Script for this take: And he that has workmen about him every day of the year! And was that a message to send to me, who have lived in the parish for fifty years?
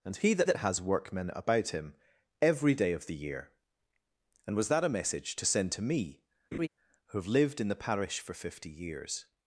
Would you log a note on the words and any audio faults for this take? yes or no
yes